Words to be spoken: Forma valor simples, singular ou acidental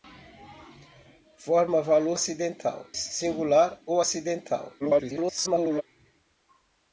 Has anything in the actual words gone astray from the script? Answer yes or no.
yes